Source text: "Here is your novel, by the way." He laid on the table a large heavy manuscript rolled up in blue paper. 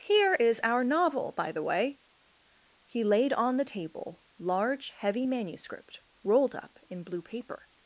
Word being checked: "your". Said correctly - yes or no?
no